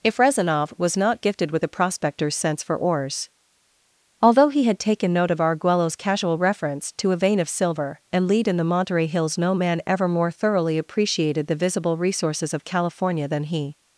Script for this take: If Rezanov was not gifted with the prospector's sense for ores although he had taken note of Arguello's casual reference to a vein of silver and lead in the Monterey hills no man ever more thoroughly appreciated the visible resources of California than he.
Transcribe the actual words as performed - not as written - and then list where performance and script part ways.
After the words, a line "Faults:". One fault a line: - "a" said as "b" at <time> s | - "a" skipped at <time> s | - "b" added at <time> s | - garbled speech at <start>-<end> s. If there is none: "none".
If Rezanov was not gifted with the prospector's sense for ores although he had taken note of Arguello's casual reference to a vein of silver and lead in the Monterey hills no man ever more thoroughly appreciated the visible resources of California than he.
Faults:
none